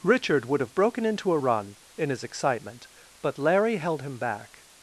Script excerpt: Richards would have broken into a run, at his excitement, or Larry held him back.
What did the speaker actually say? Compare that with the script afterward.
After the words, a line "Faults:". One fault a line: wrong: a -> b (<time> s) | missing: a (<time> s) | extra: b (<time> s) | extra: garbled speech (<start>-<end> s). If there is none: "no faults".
Richard would have broken into a run, in his excitement, but Larry held him back.
Faults:
wrong: Richards -> Richard (0.0 s)
wrong: at -> in (2.0 s)
wrong: or -> but (3.2 s)